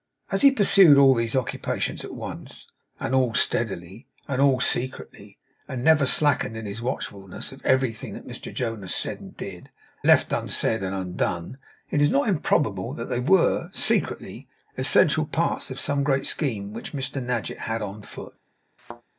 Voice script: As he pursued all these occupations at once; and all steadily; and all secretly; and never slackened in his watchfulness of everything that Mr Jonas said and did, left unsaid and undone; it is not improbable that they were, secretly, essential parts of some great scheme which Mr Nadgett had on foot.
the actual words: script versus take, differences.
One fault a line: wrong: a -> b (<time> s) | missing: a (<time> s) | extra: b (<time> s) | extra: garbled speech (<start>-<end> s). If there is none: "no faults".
no faults